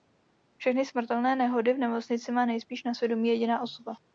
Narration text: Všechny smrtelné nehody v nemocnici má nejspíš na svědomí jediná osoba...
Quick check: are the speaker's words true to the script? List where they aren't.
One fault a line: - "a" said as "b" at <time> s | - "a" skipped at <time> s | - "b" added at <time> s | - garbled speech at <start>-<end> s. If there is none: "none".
none